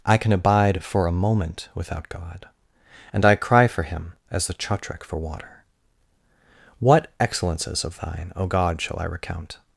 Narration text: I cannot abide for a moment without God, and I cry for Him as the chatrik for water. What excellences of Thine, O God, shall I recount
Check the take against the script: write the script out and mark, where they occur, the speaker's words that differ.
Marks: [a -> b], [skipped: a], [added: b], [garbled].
I [cannot -> can] abide for a moment without God, and I cry for Him as the chatrik for water. What excellences of Thine, O God, shall I recount